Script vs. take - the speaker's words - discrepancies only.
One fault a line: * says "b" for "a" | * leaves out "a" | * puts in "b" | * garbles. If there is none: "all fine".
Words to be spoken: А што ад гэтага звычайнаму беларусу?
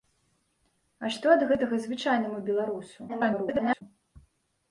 * garbles